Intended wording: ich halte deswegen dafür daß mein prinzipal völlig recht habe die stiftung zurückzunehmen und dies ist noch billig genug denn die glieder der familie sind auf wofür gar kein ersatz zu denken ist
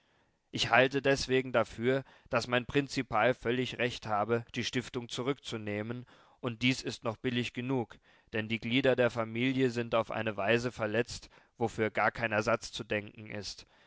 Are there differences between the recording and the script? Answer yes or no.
yes